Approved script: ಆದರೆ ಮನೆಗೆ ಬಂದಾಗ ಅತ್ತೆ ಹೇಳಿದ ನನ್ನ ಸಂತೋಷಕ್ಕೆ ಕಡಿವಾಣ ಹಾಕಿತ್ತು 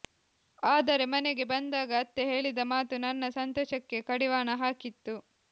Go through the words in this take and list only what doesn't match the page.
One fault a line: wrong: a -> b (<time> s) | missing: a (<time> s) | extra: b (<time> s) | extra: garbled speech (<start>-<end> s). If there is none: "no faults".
extra: ಮಾತು (2.7 s)